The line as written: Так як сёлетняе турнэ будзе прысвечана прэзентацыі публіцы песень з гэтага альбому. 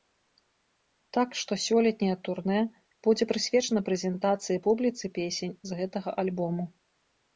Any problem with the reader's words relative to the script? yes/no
yes